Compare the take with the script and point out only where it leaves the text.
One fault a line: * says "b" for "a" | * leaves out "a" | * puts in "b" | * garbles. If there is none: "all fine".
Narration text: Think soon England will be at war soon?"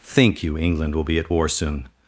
* says "you" for "soon"